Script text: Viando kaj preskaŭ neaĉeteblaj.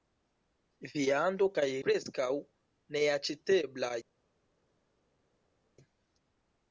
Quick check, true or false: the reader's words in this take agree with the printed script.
true